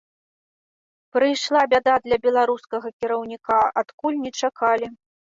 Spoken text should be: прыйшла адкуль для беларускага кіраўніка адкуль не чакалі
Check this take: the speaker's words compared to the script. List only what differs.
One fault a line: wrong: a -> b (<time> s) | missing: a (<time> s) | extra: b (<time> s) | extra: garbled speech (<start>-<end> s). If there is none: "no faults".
wrong: адкуль -> бяда (1.7 s)